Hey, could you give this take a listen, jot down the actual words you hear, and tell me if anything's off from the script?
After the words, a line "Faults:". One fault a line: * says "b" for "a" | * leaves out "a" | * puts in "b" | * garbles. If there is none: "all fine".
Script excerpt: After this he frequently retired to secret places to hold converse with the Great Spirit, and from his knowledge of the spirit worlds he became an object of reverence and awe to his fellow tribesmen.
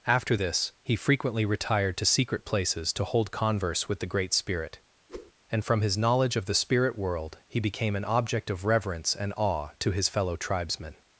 After this he frequently retired to secret places to hold converse with the Great Spirit, and from his knowledge of the spirit world he became an object of reverence and awe to his fellow tribesmen.
Faults:
* says "world" for "worlds"